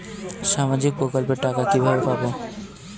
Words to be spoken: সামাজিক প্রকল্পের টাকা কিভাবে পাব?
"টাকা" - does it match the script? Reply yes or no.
yes